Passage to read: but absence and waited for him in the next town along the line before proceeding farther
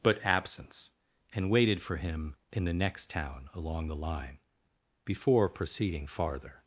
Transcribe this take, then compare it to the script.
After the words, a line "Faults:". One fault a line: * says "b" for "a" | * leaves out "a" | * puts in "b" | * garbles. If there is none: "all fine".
but absence and waited for him in the next town along the line before proceeding farther
Faults:
all fine